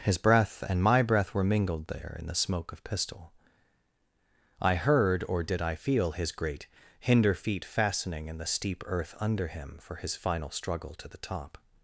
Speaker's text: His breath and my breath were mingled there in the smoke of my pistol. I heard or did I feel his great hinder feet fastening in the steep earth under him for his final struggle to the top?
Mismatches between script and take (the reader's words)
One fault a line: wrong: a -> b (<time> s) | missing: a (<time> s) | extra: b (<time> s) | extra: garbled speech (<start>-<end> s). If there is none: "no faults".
missing: my (2.8 s)